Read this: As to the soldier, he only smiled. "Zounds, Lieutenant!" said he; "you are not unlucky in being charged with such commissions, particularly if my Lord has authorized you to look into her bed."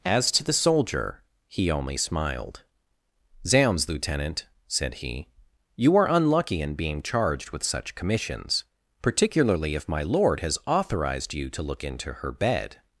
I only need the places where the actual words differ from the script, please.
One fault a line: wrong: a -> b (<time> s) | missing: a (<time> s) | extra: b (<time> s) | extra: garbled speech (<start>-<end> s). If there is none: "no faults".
missing: not (6.1 s)